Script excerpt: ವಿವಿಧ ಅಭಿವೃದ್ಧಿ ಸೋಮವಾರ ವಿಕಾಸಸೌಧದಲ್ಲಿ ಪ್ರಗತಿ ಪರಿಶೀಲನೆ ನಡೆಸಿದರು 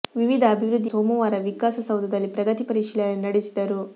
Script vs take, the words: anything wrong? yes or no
no